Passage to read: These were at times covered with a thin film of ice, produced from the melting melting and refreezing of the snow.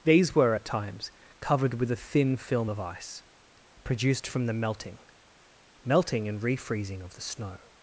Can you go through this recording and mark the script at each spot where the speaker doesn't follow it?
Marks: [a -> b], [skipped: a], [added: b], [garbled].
These were at times covered with a thin film of ice, produced from the melting melting and refreezing of the snow.